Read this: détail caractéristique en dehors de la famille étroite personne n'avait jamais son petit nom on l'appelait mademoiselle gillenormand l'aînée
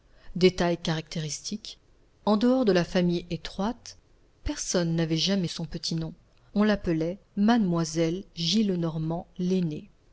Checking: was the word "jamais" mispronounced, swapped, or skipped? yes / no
no